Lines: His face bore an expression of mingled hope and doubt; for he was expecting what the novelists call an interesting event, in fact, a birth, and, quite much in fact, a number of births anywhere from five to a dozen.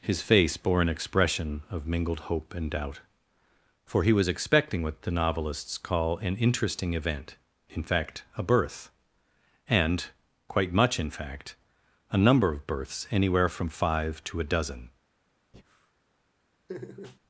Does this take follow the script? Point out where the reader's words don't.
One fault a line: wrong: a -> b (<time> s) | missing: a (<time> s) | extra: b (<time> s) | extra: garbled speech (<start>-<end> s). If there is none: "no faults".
no faults